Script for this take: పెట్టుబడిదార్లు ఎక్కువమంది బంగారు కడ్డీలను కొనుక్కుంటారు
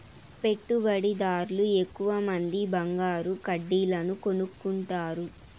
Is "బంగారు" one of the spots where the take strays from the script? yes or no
no